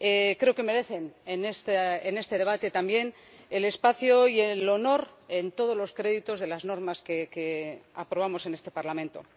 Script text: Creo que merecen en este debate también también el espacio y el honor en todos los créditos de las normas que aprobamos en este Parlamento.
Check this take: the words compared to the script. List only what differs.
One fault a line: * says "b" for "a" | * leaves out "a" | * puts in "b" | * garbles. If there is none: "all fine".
* leaves out "también"